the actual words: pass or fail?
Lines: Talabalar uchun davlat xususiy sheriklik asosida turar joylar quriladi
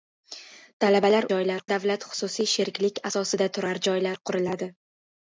fail